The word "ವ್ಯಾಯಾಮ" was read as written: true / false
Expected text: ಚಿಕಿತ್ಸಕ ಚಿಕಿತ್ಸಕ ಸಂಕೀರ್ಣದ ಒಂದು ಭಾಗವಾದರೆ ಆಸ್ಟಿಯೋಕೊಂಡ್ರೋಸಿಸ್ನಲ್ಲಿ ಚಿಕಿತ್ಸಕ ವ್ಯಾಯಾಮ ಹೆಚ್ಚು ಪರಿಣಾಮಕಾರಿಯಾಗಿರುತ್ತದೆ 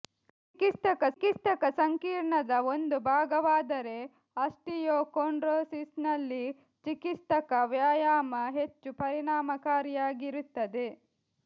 true